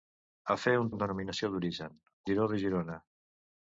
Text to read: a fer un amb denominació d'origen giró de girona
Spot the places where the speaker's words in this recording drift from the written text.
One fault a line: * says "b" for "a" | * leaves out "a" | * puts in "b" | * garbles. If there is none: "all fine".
all fine